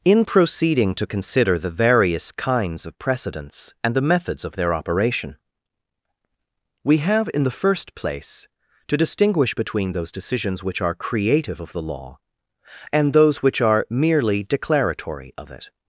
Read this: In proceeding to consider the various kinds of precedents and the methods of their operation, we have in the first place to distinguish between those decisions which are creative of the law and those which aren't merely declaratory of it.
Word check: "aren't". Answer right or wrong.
wrong